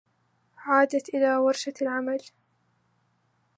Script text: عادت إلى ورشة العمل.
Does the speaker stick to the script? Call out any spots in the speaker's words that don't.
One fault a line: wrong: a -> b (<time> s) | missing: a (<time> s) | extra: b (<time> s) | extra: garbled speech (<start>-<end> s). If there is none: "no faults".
no faults